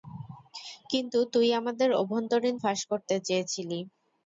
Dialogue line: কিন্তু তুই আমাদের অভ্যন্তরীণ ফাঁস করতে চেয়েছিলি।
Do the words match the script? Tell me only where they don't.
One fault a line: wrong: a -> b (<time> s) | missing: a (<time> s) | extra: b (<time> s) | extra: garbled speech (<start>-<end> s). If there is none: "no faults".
no faults